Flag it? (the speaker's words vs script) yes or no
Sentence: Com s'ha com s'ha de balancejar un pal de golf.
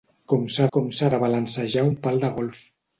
no